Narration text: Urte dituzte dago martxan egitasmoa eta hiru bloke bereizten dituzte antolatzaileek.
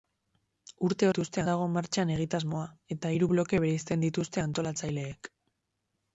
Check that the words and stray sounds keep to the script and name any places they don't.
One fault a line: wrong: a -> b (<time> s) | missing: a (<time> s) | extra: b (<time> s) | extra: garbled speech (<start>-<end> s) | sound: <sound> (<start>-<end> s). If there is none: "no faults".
no faults